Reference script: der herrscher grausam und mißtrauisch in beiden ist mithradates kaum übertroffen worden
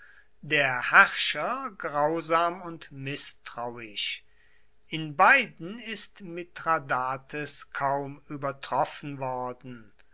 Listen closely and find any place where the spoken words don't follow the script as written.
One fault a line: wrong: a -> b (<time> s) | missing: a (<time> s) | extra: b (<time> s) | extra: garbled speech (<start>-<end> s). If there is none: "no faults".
no faults